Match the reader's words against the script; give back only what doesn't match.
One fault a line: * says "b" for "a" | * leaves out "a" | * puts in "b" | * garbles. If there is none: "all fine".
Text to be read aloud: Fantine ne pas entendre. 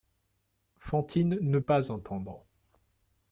all fine